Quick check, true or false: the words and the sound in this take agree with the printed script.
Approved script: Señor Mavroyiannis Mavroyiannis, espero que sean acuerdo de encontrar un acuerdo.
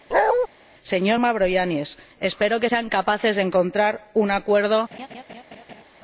false